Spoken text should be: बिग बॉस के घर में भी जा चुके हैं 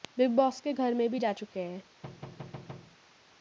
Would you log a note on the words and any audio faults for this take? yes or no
yes